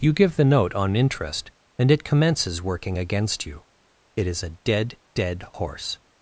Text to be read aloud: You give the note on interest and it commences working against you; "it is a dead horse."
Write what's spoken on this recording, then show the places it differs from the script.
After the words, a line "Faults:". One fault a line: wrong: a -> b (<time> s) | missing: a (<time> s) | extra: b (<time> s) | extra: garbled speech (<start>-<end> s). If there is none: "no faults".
You give the note on interest and it commences working against you; "it is a dead dead horse."
Faults:
extra: dead (5.1 s)